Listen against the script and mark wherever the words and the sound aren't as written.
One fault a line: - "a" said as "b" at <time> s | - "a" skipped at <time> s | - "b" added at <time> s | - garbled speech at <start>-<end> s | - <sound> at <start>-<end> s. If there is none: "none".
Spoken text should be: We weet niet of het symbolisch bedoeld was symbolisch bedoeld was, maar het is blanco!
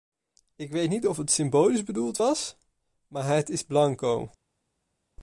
- "We" said as "Ik" at 0.6 s
- "symbolisch bedoeld was" skipped at 2.6 s